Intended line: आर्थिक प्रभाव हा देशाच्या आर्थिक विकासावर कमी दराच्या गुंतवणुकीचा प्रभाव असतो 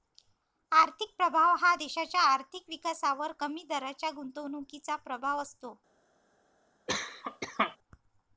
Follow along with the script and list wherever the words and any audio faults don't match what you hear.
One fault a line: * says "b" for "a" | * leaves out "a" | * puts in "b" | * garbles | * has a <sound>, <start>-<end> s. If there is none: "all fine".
* has a cough, 6.9-7.8 s